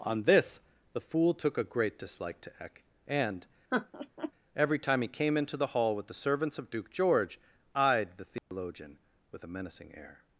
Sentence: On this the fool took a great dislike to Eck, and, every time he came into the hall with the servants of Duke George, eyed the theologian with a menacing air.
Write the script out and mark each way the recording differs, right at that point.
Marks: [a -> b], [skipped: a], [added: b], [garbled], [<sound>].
On this the fool took a great dislike to Eck, and, [laugh] every time he came into the hall with the servants of Duke George, eyed the theologian [dropout] with a menacing air.